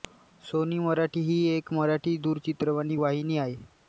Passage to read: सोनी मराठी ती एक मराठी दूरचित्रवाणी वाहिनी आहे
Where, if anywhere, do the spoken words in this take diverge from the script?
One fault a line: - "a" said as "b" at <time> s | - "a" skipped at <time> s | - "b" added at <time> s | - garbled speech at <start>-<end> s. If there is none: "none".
- "ती" said as "ही" at 1.2 s